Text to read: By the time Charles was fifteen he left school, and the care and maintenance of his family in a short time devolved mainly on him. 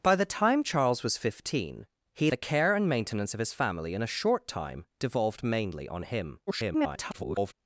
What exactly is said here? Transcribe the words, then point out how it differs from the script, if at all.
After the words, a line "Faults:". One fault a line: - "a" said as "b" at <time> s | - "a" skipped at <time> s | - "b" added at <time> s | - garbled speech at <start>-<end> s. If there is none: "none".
By the time Charles was fifteen he the care and maintenance of his family in a short time devolved mainly on him. [garbled]
Faults:
- "left school and" skipped at 2.3 s
- garbled speech at 6.5-7.5 s